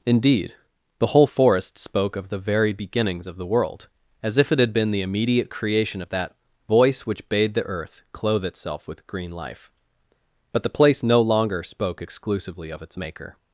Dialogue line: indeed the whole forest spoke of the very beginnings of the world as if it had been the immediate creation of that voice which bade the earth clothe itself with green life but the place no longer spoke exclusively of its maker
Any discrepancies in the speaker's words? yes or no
no